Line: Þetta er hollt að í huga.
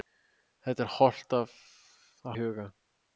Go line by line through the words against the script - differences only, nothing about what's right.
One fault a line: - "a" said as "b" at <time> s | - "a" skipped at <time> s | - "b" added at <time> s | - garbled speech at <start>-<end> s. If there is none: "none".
none